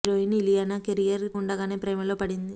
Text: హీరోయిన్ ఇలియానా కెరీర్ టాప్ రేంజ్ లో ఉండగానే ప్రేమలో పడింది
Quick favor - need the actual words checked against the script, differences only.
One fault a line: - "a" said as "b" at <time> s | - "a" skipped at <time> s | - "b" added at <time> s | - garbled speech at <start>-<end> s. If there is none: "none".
- "టాప్ రేంజ్ లో" skipped at 1.2 s